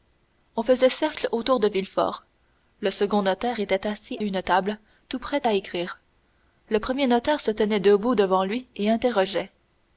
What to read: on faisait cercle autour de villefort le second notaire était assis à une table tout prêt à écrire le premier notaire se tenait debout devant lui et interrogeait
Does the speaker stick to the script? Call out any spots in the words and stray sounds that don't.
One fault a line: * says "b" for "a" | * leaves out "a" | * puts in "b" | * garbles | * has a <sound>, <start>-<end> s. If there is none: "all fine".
* leaves out "à"